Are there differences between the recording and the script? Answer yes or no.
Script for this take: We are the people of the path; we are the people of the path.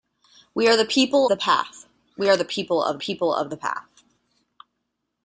yes